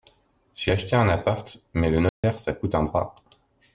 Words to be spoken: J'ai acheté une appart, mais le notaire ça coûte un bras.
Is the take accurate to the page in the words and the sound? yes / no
no